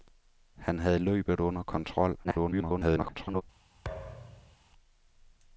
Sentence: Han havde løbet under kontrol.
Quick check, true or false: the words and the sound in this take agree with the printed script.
false